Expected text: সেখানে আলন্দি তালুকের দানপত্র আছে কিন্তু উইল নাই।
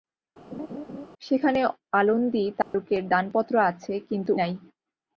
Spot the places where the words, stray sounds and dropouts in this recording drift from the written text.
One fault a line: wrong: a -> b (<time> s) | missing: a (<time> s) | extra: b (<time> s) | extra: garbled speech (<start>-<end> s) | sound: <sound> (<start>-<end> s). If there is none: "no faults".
sound: laugh (0.5-1.1 s)
sound: dropout (2.6-2.7 s)
missing: উইল (4.3 s)